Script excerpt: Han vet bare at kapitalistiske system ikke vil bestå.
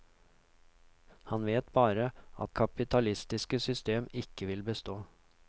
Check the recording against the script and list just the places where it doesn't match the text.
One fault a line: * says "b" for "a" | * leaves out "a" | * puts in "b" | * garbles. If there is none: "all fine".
all fine